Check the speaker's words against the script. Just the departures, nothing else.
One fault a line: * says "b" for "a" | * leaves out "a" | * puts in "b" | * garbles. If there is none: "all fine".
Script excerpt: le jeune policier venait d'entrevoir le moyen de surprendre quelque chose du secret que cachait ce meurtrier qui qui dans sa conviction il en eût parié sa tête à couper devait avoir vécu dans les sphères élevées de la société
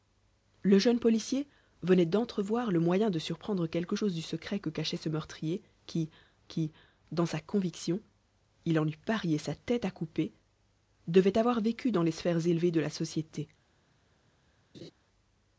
all fine